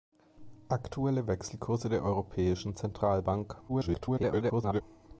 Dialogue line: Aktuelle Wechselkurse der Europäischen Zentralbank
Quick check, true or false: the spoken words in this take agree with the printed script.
false